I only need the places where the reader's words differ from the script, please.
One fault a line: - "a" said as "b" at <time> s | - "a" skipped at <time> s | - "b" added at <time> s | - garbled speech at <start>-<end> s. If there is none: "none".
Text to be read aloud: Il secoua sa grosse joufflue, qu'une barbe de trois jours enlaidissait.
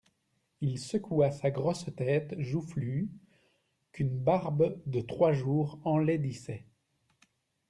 - "tête" added at 2.0 s